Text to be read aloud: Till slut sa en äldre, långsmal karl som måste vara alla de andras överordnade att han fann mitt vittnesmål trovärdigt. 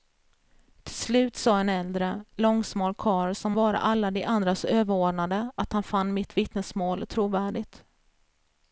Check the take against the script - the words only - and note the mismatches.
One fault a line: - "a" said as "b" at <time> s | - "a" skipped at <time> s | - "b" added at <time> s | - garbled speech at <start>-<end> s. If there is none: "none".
- "måste" skipped at 3.5 s